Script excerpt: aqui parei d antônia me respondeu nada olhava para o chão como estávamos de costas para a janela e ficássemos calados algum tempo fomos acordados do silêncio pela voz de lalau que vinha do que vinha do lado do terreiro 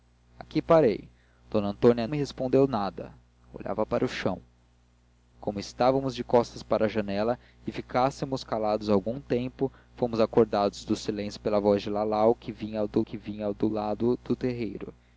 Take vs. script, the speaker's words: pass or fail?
pass